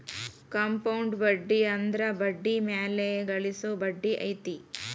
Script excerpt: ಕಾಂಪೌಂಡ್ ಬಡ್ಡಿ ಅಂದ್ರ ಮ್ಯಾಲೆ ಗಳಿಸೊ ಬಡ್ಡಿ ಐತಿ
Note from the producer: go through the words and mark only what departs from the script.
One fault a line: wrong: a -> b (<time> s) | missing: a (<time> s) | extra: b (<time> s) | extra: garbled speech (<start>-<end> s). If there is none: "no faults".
extra: ಬಡ್ಡಿ (2.2 s)